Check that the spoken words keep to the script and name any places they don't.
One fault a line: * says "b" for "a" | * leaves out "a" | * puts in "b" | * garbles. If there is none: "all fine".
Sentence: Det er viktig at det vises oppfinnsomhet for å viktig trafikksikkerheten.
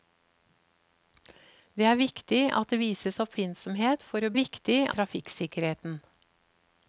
all fine